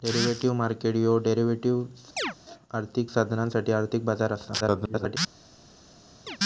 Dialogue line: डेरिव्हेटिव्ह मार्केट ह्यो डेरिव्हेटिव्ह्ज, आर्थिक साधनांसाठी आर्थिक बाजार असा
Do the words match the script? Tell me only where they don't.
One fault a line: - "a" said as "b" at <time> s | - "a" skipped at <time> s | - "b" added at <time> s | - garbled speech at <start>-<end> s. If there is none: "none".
- garbled speech at 4.6-5.2 s